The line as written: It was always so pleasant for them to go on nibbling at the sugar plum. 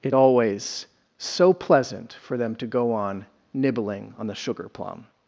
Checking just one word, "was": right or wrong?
wrong